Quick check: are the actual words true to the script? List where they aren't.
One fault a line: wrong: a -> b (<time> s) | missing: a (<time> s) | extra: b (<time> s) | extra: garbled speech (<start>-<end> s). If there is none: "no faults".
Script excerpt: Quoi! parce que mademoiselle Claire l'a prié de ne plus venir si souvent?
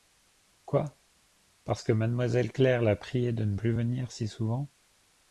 no faults